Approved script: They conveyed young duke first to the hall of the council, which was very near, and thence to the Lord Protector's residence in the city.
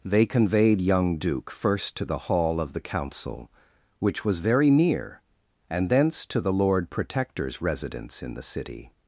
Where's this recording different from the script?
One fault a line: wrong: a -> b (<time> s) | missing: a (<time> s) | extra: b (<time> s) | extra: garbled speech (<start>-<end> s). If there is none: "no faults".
no faults